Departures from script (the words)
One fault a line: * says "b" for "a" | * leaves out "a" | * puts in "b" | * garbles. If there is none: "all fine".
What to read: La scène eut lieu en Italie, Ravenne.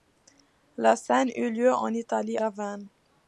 all fine